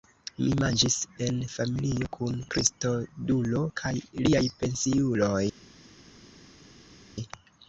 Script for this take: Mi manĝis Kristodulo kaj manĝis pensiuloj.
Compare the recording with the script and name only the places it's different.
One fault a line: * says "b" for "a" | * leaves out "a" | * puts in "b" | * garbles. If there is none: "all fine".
* puts in "en familio kun"
* says "liaj" for "manĝis"